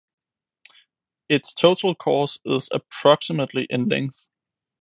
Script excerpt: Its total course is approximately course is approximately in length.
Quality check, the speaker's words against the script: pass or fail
fail